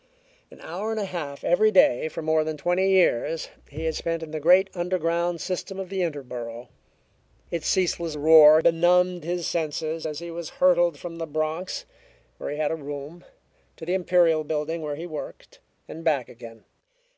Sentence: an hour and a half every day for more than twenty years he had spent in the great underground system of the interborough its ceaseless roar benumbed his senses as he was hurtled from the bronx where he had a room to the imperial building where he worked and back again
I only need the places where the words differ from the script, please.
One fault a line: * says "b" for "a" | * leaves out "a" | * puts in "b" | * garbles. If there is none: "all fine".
all fine